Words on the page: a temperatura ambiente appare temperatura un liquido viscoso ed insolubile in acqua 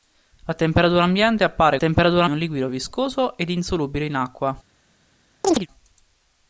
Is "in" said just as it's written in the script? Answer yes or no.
yes